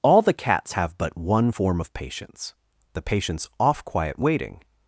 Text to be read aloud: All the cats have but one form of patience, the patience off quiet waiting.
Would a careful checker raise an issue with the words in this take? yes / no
no